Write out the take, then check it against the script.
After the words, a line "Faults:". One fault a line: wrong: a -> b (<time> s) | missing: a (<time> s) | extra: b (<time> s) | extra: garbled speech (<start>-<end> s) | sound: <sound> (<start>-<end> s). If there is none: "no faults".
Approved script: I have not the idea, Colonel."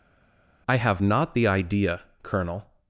I have not the idea, Colonel."
Faults:
no faults